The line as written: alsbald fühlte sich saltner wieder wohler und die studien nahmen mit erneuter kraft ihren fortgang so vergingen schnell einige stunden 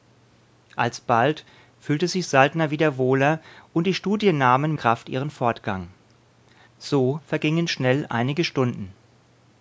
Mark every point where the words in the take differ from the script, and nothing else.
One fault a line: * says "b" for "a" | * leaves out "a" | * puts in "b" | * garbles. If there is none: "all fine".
* leaves out "mit erneuter"